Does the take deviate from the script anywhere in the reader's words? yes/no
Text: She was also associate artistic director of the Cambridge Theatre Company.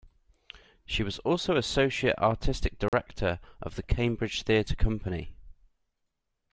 no